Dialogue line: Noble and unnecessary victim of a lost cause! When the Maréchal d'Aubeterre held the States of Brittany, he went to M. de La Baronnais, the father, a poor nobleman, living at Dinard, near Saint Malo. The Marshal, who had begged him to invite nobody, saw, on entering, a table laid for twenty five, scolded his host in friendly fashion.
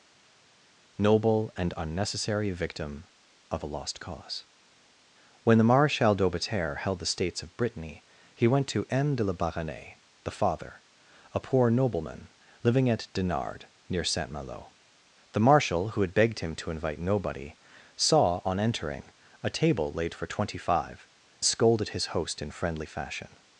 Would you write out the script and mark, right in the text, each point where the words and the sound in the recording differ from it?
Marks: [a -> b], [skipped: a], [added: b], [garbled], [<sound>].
Noble and unnecessary victim of a lost cause! When the Maréchal d'Aubeterre held the States of Brittany, he went to M. de La Baronnais, the father, a poor nobleman, living at Dinard, near Saint Malo. The Marshal, who had begged him to invite nobody, saw, on entering, a table laid for twenty five, scolded his host in friendly fashion.